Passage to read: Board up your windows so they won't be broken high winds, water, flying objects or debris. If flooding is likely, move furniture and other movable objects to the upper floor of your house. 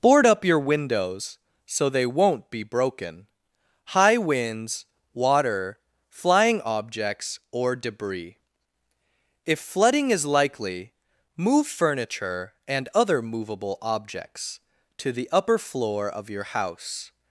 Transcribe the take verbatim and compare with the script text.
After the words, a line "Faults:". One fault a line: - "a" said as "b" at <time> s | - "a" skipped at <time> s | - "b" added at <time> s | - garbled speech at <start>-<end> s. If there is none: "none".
Board up your windows so they won't be broken high winds, water, flying objects or debris. If flooding is likely, move furniture and other movable objects to the upper floor of your house.
Faults:
none